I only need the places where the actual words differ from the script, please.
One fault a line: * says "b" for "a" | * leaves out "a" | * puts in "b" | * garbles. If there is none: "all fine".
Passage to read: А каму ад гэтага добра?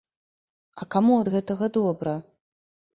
all fine